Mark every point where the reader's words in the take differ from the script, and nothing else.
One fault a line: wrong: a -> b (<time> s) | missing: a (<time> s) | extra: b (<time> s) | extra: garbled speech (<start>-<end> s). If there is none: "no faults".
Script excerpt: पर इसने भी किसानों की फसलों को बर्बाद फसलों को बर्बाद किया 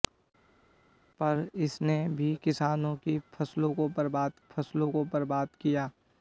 no faults